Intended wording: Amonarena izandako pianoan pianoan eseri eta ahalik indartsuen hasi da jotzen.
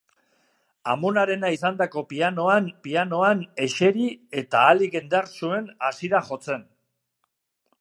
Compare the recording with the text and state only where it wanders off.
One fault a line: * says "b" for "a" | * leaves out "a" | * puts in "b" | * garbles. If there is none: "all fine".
all fine